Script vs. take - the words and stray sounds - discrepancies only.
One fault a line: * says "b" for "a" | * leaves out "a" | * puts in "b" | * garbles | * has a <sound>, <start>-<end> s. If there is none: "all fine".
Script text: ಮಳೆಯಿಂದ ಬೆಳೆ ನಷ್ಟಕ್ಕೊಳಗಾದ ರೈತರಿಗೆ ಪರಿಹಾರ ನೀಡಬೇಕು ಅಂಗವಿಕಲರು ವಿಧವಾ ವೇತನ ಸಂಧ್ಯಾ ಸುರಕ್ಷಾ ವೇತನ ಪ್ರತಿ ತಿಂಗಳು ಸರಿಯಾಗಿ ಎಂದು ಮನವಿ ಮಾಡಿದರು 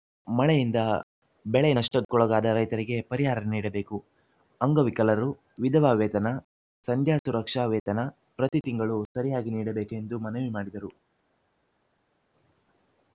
* puts in "ನೀಡಬೇಕು"